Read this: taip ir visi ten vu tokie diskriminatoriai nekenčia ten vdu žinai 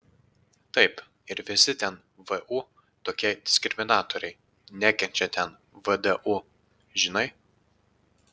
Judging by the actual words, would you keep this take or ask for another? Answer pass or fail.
pass